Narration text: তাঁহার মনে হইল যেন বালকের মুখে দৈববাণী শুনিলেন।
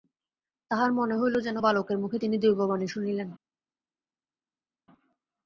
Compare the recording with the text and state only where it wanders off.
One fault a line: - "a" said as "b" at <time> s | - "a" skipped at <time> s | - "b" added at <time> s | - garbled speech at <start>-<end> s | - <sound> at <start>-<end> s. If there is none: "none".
- "তিনি" added at 2.2 s